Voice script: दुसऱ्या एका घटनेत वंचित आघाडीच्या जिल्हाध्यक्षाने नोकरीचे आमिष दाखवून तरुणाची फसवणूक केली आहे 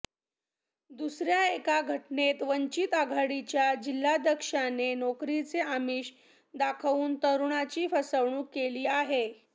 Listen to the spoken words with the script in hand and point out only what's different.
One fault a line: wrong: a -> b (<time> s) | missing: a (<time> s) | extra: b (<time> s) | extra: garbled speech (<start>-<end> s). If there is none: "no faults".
no faults